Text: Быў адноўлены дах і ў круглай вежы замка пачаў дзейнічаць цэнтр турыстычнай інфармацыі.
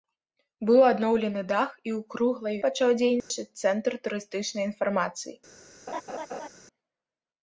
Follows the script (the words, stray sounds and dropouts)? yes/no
no